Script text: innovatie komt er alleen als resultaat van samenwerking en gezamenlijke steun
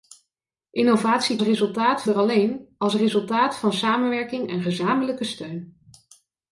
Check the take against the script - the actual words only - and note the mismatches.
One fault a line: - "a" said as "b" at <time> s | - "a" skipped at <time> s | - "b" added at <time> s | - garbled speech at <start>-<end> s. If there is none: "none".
- "komt" said as "resultaat" at 1.4 s